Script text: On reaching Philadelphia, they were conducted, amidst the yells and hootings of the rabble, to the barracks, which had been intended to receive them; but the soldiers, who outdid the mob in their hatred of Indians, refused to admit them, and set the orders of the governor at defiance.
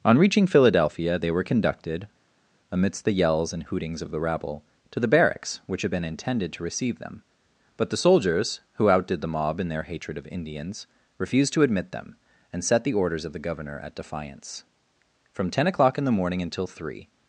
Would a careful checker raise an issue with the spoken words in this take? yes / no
yes